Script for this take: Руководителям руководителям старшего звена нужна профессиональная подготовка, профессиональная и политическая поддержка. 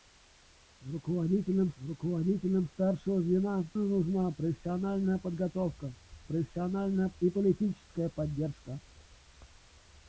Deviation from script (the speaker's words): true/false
false